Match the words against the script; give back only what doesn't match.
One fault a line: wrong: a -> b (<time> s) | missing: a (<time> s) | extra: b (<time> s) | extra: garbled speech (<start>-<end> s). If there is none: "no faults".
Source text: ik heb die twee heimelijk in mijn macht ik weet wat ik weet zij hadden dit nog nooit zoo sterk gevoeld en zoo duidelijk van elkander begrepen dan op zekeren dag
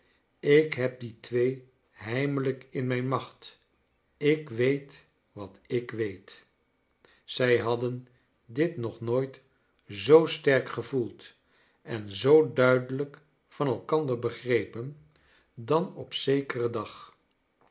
no faults